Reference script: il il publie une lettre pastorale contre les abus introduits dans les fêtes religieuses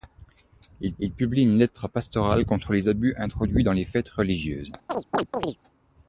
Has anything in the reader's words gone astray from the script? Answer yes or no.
no